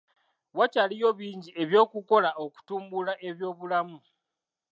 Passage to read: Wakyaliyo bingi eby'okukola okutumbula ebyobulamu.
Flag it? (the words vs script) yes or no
no